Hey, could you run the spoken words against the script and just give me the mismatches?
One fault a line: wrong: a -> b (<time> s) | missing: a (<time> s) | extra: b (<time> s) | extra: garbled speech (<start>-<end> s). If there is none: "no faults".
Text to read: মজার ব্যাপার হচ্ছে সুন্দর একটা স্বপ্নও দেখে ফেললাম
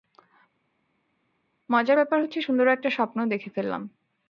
no faults